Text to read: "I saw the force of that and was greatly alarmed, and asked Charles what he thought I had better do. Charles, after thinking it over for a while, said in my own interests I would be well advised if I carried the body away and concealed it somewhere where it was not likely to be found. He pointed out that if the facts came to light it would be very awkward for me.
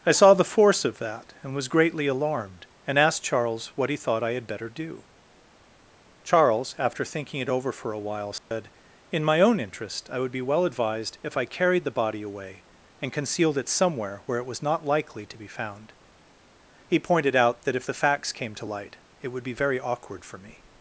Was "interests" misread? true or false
true